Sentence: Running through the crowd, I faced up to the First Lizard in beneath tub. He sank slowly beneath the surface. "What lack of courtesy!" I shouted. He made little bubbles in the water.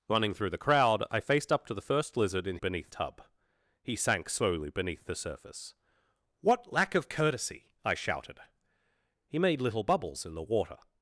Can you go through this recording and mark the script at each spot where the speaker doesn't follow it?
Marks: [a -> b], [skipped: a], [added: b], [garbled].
Running through the crowd, I faced up to the First Lizard in beneath tub. He sank slowly beneath the surface. "What lack of courtesy!" I shouted. He made little bubbles in the water.